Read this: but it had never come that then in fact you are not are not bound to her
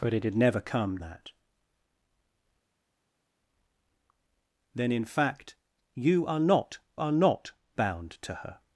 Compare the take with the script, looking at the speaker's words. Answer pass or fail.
pass